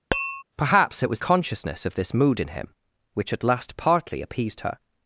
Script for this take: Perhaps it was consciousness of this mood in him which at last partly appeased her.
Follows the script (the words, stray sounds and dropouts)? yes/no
no